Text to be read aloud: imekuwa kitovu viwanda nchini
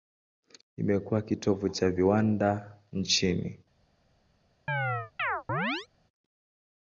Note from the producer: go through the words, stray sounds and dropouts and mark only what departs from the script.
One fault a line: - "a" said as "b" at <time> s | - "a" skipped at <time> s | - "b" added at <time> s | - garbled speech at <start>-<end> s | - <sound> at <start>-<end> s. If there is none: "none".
- "cha" added at 1.7 s
- chirp at 4.7-5.9 s